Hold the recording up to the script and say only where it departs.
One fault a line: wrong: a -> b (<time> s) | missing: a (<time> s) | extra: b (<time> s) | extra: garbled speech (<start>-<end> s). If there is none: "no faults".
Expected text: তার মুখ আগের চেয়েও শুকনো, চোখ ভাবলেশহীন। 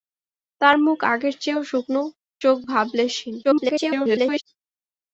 extra: garbled speech (3.4-4.4 s)